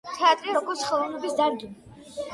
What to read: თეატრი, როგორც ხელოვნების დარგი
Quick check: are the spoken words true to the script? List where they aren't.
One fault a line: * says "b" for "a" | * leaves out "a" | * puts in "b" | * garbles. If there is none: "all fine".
all fine